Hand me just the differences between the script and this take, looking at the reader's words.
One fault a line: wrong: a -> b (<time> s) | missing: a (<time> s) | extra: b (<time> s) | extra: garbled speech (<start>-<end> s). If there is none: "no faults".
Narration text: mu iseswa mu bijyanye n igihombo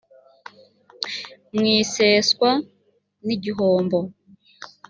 missing: mu bijyanye (2.5 s)